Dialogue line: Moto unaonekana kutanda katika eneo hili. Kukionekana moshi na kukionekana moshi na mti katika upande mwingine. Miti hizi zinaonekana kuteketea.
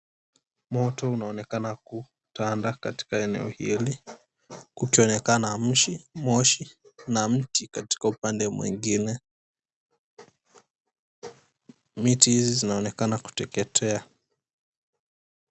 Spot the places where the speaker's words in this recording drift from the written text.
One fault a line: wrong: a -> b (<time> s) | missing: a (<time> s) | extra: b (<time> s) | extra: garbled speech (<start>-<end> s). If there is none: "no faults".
missing: kukionekana moshi na (7.3 s)